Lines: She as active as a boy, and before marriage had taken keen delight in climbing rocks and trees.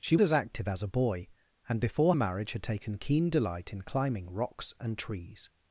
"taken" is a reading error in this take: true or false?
false